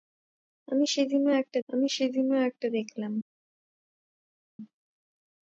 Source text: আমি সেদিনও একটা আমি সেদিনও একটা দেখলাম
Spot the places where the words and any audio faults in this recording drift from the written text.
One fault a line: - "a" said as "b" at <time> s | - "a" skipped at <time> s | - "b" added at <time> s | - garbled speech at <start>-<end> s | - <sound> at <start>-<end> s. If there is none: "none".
none